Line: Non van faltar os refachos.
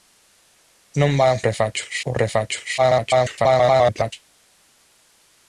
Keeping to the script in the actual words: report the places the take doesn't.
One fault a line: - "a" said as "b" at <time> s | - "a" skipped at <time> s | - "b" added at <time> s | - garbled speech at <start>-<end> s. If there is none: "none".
- "faltar" said as "refachos" at 1.5 s
- garbled speech at 2.8-4.1 s